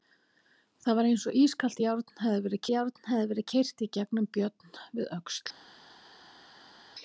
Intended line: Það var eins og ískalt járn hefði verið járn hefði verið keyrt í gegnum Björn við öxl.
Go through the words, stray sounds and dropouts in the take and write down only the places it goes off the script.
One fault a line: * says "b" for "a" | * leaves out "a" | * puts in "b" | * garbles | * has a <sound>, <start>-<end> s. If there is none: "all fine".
all fine